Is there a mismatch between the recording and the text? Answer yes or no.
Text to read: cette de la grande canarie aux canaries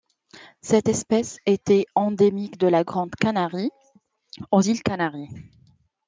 yes